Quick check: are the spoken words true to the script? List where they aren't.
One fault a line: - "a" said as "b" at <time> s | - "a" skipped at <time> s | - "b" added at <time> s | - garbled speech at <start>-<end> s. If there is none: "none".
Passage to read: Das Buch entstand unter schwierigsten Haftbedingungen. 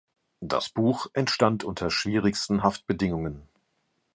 none